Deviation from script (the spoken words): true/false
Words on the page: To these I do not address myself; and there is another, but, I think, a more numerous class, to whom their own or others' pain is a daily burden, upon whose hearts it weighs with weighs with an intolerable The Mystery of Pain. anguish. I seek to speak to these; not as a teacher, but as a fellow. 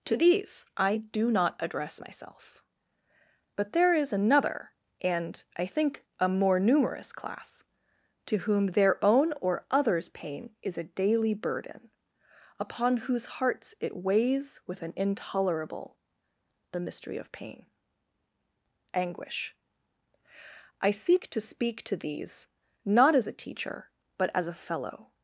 true